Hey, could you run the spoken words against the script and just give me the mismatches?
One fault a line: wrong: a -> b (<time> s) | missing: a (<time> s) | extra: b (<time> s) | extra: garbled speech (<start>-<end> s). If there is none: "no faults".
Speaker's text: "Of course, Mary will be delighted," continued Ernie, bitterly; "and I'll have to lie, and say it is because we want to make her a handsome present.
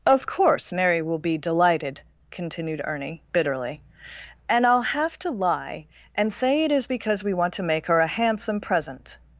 no faults